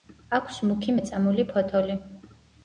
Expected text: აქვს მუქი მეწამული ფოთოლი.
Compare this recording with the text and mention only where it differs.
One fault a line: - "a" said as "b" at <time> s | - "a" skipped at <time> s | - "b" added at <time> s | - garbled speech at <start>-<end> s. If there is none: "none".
none